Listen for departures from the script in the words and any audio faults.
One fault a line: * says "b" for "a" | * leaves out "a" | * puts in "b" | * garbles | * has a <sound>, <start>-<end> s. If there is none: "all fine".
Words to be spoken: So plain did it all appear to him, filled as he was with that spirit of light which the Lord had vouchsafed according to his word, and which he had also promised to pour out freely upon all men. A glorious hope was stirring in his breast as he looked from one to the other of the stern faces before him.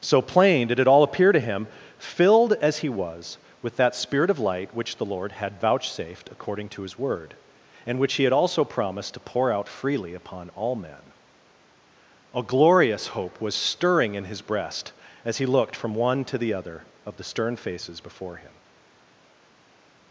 all fine